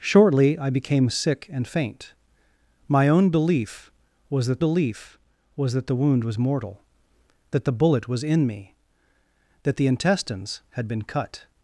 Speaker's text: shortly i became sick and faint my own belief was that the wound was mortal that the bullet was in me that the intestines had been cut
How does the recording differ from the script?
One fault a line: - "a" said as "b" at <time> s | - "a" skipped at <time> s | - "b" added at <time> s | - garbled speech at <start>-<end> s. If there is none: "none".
- "belief was that" added at 4.6 s